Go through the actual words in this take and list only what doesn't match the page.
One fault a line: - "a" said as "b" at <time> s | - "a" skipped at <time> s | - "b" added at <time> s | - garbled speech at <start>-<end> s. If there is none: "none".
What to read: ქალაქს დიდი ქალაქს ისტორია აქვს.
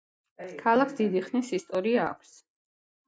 - "ქალაქს" said as "ხნის" at 1.3 s